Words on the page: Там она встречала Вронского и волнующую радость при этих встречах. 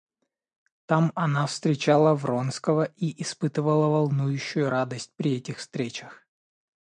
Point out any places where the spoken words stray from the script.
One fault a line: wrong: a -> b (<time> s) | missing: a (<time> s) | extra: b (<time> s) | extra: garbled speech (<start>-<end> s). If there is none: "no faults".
extra: испытывала (3.2 s)